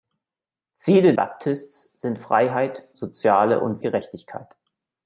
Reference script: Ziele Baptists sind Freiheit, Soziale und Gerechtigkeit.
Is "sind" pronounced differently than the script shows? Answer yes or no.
no